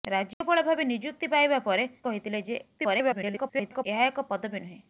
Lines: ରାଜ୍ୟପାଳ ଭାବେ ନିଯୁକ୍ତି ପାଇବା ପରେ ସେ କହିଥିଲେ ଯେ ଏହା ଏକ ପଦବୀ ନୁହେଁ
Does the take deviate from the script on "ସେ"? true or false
true